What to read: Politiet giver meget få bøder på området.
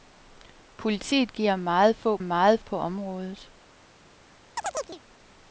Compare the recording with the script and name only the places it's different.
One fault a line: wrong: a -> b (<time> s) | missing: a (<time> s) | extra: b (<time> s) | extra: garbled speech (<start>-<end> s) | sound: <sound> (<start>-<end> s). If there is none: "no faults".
wrong: bøder -> meget (2.2 s)
sound: chirp (4.6-5.0 s)